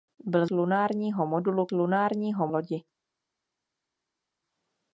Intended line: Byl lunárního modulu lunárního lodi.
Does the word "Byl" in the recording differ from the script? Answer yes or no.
no